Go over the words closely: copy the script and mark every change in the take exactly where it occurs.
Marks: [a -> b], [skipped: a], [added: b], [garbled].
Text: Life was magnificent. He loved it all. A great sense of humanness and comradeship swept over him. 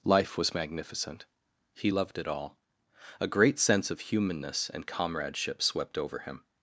Life was magnificent. He loved it all. A great sense of humanness and comradeship swept over him.